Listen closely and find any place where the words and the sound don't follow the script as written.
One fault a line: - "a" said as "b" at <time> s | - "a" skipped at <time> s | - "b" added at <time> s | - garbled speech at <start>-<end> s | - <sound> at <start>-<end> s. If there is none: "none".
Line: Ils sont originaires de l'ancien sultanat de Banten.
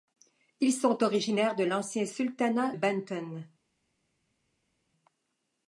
- "de" skipped at 2.7 s